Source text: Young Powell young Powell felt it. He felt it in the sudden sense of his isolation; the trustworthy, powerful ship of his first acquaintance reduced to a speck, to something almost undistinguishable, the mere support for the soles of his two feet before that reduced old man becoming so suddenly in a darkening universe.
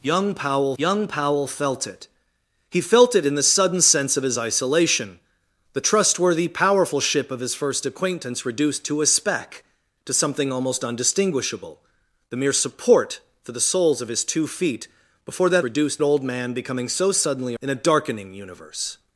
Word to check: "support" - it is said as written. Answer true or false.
true